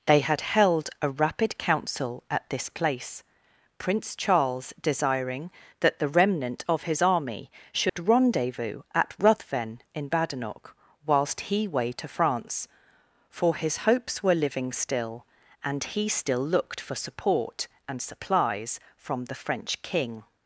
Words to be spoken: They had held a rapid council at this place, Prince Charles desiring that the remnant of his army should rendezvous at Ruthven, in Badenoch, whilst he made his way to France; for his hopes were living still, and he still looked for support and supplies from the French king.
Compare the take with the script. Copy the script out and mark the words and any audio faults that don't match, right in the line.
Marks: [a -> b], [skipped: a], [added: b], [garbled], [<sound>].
They had held a rapid council at this place, Prince Charles desiring that the remnant of his army should [dropout] rendezvous at Ruthven, in Badenoch, whilst he [skipped: made his] way to France; for his hopes were living still, and he still looked for support and supplies from the French king.